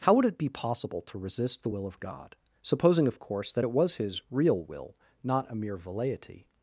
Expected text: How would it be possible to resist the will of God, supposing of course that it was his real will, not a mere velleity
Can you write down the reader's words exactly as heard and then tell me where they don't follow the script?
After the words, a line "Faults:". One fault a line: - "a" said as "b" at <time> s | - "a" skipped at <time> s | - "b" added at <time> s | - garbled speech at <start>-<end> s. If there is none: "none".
How would it be possible to resist the will of God, supposing of course that it was his real will, not a mere velleity
Faults:
none